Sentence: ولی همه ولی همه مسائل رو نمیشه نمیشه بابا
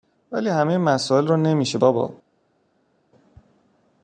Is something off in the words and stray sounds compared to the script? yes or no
yes